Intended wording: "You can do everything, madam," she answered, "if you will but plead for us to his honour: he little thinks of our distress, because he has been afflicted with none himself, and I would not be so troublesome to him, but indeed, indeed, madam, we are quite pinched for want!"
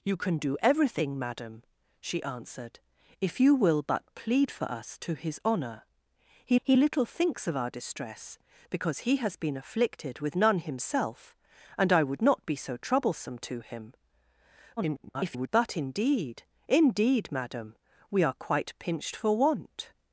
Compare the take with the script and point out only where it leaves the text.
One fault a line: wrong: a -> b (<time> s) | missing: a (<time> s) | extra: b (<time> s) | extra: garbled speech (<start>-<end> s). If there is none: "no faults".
extra: he (6.6 s)
extra: garbled speech (14.8-15.5 s)